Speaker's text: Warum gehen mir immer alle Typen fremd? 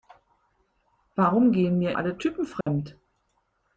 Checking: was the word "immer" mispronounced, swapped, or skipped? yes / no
yes